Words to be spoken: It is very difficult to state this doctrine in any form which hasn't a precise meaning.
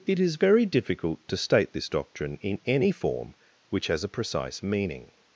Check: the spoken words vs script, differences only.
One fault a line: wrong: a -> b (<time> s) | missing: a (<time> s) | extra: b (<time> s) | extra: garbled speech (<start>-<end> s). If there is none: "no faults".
wrong: hasn't -> has (3.9 s)